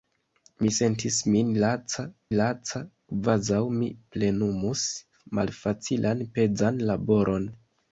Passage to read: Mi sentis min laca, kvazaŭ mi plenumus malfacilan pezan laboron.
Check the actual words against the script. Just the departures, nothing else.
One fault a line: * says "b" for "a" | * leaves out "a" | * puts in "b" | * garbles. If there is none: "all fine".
* puts in "laca"